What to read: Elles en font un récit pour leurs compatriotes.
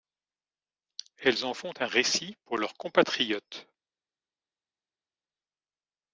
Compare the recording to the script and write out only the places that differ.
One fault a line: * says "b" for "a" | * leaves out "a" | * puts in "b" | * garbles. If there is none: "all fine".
all fine